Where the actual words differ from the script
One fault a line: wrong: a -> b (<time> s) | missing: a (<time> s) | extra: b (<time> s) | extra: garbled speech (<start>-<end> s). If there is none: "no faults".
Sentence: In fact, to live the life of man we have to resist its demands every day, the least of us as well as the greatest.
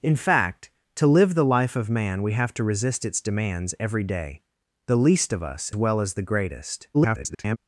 missing: as (5.7 s)
extra: garbled speech (6.9-7.6 s)